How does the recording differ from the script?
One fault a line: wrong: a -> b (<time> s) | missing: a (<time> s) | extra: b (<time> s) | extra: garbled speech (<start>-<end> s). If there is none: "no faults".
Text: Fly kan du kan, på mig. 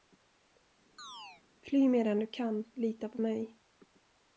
wrong: kan -> medan (1.9 s)
extra: lita (2.8 s)